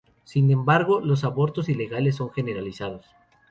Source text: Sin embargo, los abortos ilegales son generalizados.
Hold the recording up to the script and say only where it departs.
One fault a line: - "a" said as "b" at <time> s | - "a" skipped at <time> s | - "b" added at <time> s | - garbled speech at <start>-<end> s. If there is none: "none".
none